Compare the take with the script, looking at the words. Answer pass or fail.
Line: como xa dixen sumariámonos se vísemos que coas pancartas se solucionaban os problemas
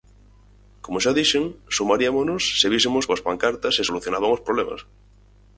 fail